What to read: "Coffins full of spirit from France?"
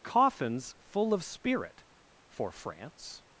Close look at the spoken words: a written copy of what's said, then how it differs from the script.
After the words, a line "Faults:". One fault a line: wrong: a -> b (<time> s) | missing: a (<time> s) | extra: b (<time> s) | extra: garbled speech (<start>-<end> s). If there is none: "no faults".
"Coffins full of spirit for France?"
Faults:
wrong: from -> for (2.3 s)